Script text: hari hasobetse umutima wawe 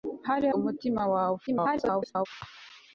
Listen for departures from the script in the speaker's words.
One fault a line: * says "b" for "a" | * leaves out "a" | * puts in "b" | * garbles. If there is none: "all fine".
* leaves out "hasobetse"
* garbles